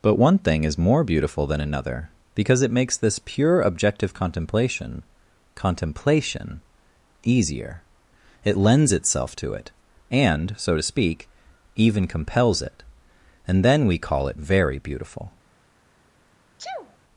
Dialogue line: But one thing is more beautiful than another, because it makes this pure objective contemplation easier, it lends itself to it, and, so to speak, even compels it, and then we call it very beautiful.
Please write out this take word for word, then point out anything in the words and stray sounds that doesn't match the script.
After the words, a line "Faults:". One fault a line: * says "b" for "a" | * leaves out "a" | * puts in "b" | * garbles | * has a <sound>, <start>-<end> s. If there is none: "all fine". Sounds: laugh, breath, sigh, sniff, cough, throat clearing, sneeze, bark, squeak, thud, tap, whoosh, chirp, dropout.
But one thing is more beautiful than another, because it makes this pure objective contemplation contemplation easier, it lends itself to it, and, so to speak, even compels it, and then we call it very beautiful.
Faults:
* puts in "contemplation"
* has a sneeze, 16.6-17.0 s